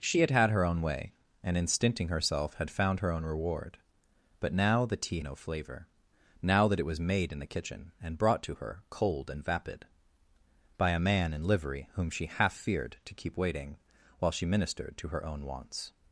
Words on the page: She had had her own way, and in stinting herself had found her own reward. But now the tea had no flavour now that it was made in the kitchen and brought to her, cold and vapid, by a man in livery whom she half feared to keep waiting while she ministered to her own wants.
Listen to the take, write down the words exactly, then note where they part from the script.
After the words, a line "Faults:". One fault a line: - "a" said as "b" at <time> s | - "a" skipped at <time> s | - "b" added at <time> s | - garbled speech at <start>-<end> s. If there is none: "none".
She had had her own way, and in stinting herself had found her own reward. But now the tea no flavour now that it was made in the kitchen and brought to her, cold and vapid, by a man in livery whom she half feared to keep waiting while she ministered to her own wants.
Faults:
- "had" skipped at 5.2 s